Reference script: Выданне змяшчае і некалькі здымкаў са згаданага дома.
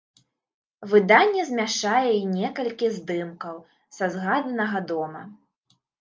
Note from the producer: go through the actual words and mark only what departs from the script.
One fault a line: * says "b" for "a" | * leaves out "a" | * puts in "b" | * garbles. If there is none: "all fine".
all fine